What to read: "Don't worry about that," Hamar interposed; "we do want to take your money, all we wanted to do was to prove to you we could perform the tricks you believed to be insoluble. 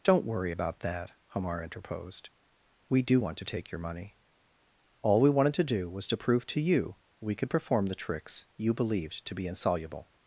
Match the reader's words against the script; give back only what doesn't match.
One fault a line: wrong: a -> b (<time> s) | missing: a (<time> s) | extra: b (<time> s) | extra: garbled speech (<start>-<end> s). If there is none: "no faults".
no faults